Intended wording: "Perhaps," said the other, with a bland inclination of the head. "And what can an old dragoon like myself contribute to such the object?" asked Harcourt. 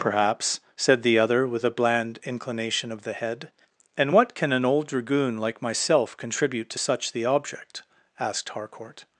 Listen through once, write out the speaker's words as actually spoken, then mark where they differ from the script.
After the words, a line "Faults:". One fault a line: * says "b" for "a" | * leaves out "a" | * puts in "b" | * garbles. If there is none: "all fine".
"Perhaps," said the other, with a bland inclination of the head. "And what can an old dragoon like myself contribute to such the object?" asked Harcourt.
Faults:
all fine